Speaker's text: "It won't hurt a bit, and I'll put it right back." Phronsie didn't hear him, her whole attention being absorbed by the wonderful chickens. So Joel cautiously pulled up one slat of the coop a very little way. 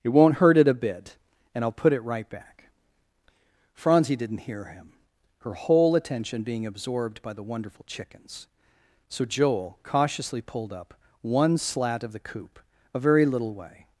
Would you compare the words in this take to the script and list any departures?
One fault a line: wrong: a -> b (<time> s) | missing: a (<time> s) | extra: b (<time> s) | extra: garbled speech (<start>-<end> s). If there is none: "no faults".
extra: it (0.6 s)